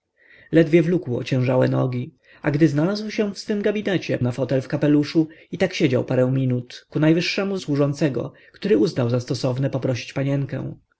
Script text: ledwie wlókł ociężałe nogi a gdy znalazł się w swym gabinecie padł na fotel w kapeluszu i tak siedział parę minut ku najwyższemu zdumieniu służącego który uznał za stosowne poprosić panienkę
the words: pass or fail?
fail